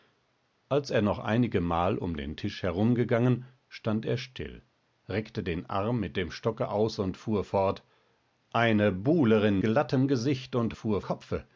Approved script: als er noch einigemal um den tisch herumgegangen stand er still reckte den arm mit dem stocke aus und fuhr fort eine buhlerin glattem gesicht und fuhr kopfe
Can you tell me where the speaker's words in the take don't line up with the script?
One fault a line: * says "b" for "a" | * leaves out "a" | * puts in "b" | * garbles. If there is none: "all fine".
all fine